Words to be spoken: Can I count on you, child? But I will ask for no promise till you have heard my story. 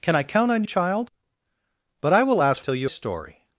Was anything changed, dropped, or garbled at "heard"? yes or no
yes